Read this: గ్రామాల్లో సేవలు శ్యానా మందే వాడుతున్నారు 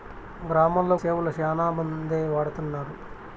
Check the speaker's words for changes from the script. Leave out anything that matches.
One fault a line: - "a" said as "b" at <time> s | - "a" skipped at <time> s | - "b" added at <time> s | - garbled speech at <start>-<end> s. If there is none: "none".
none